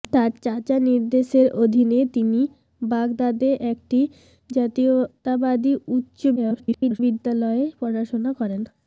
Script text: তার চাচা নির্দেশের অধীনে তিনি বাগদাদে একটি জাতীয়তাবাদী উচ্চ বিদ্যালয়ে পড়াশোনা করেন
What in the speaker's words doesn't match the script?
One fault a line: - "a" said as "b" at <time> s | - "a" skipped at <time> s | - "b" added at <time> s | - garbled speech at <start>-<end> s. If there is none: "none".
- garbled speech at 6.4-7.0 s